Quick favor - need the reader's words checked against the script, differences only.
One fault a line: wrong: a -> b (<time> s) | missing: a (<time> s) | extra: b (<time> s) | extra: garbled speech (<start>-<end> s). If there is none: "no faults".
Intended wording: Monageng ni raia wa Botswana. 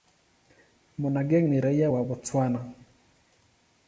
no faults